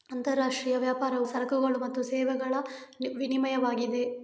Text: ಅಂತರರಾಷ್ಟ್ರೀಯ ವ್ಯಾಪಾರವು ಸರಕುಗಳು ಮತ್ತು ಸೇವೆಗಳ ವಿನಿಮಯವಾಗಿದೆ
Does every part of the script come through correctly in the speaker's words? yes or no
yes